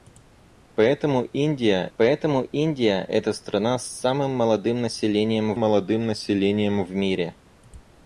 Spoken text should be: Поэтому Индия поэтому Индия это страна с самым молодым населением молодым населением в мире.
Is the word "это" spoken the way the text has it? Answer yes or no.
yes